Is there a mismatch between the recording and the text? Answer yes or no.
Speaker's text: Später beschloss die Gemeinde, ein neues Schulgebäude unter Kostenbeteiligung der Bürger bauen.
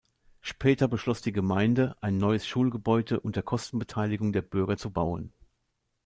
yes